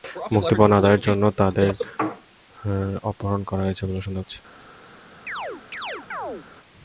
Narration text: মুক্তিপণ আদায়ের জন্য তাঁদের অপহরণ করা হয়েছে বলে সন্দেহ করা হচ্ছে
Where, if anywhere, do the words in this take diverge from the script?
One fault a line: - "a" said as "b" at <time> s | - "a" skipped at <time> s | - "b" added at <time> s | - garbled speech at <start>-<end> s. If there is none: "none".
- "করা" skipped at 4.2 s